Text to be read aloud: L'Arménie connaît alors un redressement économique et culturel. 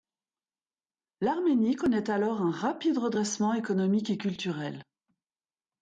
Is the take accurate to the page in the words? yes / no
no